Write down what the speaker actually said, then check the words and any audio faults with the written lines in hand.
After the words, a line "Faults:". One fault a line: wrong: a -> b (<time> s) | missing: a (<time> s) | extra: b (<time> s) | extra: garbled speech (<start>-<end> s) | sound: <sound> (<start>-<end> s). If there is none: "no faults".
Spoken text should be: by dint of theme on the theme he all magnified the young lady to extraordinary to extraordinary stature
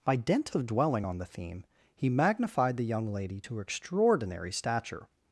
by dint of dwelling on the theme he magnified the young lady to extraordinary stature
Faults:
wrong: theme -> dwelling (0.7 s)
missing: all (2.1 s)
missing: to extraordinary (4.5 s)